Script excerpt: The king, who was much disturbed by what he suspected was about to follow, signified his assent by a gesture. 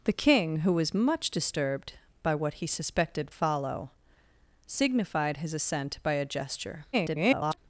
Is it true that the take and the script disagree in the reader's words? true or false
true